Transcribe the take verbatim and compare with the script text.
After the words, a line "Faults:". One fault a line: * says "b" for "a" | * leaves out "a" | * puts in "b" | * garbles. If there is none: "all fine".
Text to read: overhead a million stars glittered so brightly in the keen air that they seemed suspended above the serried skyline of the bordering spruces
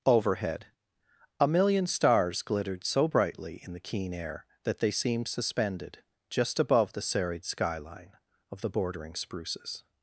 overhead a million stars glittered so brightly in the keen air that they seemed suspended just above the serried skyline of the bordering spruces
Faults:
* puts in "just"